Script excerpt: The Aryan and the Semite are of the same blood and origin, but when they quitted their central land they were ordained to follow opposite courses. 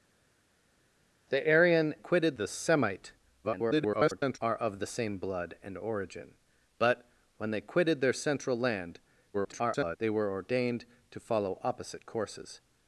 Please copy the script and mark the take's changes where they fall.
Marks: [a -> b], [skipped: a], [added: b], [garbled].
The Aryan [and -> quitted] the Semite [garbled] are of the same blood and origin, but when they quitted their central land [garbled] they were ordained to follow opposite courses.